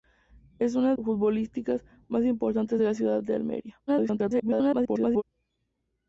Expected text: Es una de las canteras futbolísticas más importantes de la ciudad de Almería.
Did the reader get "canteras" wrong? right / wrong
wrong